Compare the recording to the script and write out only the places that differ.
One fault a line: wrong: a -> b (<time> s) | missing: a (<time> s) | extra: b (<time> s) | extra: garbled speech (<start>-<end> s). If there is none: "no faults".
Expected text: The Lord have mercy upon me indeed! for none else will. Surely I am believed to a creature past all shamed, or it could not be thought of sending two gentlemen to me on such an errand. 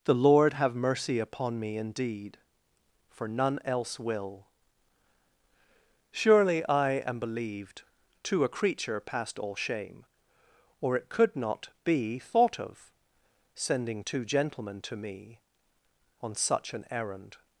wrong: shamed -> shame (9.6 s)